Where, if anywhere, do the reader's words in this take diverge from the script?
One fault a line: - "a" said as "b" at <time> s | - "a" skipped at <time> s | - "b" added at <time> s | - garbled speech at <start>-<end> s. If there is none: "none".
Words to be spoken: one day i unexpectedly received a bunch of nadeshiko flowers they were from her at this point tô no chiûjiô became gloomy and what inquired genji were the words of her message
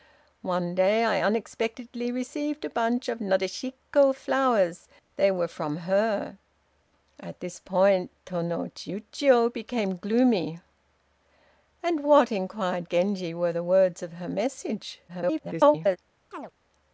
- garbled speech at 15.1-16.0 s